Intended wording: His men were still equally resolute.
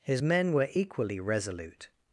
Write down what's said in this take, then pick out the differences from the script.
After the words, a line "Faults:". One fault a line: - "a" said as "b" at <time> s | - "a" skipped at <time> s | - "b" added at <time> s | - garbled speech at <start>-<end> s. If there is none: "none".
His men were equally resolute.
Faults:
- "still" skipped at 0.7 s